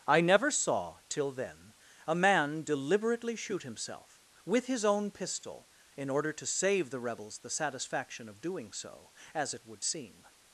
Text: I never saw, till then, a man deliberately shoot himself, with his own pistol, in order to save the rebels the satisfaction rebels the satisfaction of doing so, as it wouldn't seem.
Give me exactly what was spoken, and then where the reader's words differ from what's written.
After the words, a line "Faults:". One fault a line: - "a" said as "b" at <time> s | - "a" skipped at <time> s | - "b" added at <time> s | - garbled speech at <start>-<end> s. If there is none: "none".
I never saw, till then, a man deliberately shoot himself, with his own pistol, in order to save the rebels the satisfaction of doing so, as it would seem.
Faults:
- "rebels the satisfaction" skipped at 8.3 s
- "wouldn't" said as "would" at 9.7 s